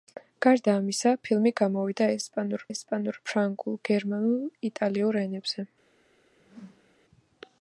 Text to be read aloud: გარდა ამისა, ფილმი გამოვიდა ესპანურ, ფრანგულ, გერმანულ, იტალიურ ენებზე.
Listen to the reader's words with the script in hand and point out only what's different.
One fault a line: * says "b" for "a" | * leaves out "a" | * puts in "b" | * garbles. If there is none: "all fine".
* puts in "ესპანურ"